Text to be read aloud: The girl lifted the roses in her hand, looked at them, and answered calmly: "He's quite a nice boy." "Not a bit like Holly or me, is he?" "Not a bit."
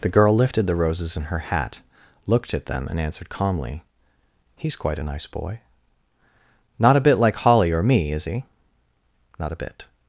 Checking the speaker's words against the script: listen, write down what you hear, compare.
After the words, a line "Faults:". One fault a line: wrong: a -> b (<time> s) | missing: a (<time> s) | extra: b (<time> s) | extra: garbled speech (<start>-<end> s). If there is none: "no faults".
The girl lifted the roses in her hat, looked at them, and answered calmly: "He's quite a nice boy." "Not a bit like Holly or me, is he?" "Not a bit."
Faults:
wrong: hand -> hat (1.4 s)